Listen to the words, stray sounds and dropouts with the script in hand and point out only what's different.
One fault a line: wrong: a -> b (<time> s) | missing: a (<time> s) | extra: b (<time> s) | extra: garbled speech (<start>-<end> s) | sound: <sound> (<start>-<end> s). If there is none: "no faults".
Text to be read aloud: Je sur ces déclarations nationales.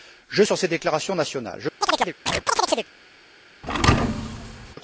sound: chirp (1.8-2.9 s)
sound: thud (3.6-4.8 s)